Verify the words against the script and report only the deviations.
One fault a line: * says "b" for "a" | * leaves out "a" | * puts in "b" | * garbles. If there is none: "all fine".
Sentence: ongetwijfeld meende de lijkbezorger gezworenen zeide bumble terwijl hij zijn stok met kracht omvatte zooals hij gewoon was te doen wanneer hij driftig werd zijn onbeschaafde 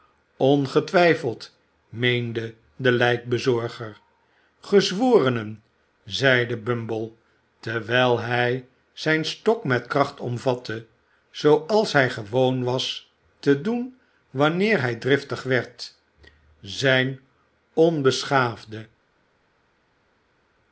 all fine